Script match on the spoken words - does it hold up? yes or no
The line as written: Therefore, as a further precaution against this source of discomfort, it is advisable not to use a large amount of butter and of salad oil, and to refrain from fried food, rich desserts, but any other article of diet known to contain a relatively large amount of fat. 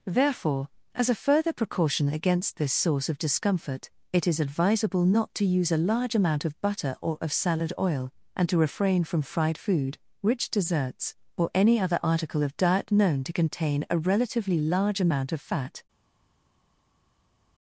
no